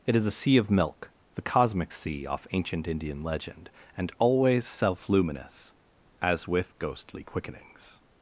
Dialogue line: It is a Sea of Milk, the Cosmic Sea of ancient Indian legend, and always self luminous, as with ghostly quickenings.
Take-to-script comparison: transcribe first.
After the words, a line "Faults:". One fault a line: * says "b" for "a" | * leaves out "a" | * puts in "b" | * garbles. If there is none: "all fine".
It is a Sea of Milk, the Cosmic Sea off ancient Indian legend, and always self luminous, as with ghostly quickenings.
Faults:
* says "off" for "of"